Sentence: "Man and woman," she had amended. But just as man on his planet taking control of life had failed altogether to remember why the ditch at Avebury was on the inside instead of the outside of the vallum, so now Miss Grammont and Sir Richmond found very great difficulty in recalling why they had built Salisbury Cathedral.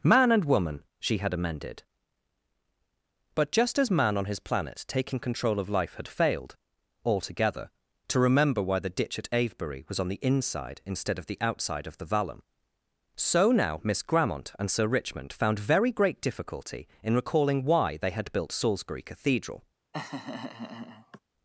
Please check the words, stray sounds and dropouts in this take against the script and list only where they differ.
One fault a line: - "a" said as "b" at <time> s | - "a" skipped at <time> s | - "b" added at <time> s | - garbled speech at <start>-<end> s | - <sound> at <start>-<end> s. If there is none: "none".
- laugh at 19.9-21.2 s